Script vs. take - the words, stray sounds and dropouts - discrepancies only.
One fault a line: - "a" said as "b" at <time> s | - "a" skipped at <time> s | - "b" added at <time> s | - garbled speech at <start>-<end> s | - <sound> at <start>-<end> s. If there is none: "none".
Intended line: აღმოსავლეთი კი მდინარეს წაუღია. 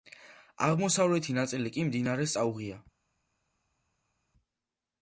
- "ნაწილი" added at 1.4 s